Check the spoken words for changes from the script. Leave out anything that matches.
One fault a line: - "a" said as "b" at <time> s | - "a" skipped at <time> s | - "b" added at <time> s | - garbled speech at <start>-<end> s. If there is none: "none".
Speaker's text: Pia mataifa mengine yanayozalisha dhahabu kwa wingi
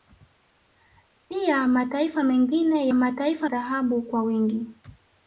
- "yanayozalisha" said as "mataifa" at 2.9 s